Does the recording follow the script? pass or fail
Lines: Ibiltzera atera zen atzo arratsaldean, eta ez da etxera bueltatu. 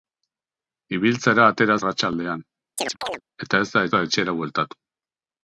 fail